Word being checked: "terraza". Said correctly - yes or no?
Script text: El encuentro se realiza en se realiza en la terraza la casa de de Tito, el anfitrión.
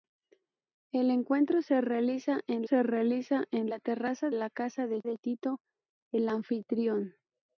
yes